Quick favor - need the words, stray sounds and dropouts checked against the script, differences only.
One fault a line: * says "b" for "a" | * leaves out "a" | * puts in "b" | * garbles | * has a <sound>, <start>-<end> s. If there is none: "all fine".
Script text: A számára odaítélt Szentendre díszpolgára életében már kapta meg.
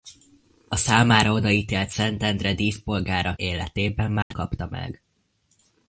* has a dropout, 4.2-4.3 s